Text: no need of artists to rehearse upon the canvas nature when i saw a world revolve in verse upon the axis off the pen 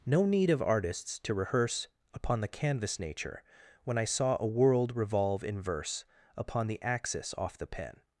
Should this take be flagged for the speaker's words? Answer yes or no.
no